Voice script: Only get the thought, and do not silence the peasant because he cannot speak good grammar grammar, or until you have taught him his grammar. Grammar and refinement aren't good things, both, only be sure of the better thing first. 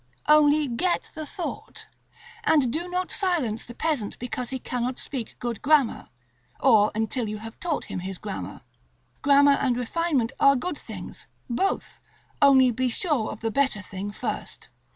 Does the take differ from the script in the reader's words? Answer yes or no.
yes